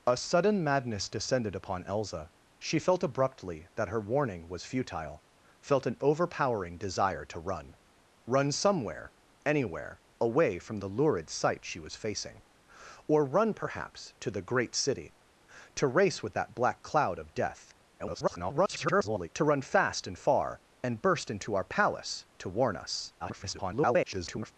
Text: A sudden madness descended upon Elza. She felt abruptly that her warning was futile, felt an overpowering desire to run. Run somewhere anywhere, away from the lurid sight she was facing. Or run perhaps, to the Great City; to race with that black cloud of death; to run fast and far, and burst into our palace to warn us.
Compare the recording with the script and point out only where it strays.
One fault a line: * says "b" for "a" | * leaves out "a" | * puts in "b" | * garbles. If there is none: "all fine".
* garbles
* garbles